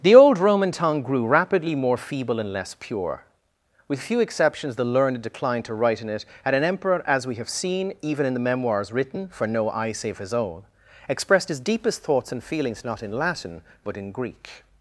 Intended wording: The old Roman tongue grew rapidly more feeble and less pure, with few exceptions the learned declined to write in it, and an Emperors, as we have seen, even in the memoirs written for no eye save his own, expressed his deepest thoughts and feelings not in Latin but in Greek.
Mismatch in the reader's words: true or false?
true